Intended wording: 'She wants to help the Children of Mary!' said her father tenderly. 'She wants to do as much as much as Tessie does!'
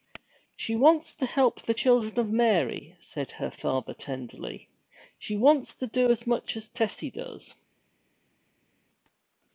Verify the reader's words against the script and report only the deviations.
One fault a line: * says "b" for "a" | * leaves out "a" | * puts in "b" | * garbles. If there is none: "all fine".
* leaves out "much as"